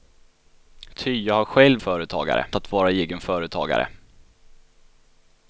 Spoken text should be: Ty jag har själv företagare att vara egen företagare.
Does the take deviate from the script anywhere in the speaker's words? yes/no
no